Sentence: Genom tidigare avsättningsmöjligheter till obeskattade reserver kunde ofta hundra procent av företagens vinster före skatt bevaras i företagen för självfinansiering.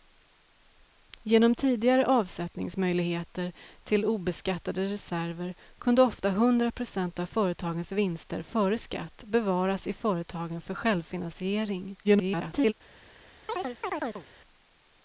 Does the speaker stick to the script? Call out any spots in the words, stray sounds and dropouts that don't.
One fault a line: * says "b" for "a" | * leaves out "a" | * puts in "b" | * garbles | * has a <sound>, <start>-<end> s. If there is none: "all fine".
* garbles
* has a chirp, 13.5-14.3 s